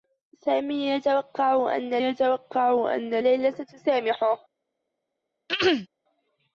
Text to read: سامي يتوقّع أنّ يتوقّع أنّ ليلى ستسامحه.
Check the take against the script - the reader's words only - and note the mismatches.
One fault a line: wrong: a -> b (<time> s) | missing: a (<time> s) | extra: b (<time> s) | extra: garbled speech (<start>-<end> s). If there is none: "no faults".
no faults